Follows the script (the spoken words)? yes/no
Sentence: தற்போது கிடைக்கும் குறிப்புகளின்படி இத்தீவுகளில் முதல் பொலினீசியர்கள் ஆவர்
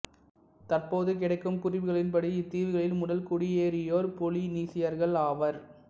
no